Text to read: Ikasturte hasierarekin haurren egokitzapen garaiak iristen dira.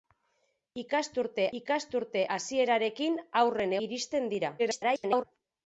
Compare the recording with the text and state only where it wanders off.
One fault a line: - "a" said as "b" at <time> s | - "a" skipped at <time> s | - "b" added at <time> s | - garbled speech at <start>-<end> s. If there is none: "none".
- "ikasturte" added at 1.6 s
- "egokitzapen garaiak" skipped at 3.8 s
- garbled speech at 4.6-5.2 s